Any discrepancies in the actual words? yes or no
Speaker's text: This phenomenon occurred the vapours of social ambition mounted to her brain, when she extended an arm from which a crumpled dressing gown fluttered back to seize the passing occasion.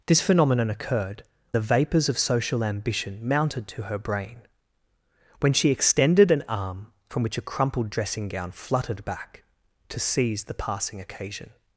no